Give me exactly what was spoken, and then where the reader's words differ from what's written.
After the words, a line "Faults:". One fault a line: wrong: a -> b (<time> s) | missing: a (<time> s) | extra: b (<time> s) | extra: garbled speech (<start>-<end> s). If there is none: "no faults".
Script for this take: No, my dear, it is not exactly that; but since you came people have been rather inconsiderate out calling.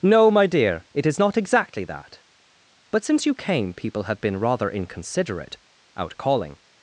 No, my dear, it is not exactly that; but since you came people have been rather inconsiderate out calling.
Faults:
no faults